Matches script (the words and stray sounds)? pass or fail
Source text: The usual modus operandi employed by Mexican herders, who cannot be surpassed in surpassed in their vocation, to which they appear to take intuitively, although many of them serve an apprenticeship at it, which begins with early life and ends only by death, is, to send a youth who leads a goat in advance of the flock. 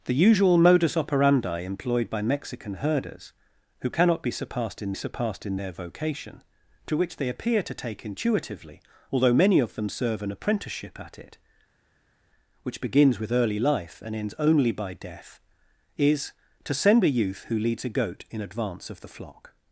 pass